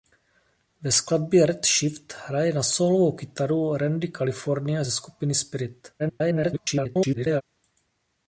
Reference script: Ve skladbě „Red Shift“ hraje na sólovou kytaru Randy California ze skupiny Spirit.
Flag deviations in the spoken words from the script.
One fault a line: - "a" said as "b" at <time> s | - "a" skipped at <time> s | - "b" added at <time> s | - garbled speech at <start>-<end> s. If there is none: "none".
- garbled speech at 6.0-7.4 s